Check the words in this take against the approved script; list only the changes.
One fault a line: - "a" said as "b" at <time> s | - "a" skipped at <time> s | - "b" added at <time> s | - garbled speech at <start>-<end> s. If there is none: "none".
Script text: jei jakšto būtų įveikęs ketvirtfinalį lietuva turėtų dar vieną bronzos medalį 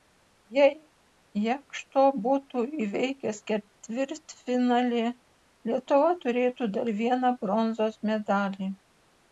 none